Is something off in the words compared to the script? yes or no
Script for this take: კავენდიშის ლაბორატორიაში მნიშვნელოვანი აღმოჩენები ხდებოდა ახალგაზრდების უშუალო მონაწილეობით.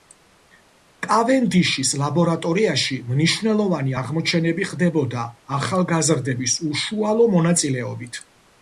no